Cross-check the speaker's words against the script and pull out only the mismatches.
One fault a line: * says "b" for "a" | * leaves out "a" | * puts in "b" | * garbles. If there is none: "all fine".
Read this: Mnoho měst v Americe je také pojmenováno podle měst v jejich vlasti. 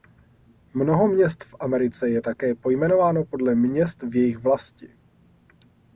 all fine